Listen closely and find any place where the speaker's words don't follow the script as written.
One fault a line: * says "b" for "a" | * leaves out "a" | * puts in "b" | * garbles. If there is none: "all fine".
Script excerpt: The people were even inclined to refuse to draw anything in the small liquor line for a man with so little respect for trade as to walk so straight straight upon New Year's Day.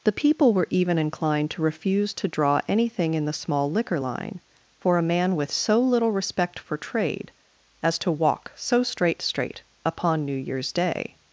all fine